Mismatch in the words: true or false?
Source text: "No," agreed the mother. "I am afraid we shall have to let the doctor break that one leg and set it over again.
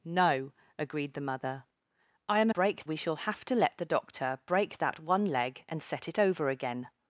true